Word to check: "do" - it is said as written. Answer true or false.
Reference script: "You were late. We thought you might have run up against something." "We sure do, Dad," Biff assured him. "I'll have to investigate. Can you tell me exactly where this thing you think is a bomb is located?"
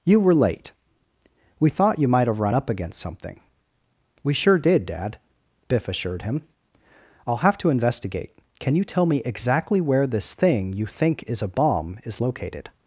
false